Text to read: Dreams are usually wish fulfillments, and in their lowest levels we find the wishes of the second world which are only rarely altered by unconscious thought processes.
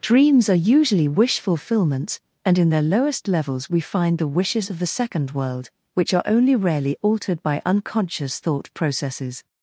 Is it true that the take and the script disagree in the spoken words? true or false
false